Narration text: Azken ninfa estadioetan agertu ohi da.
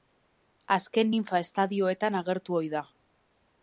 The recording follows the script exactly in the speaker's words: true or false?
true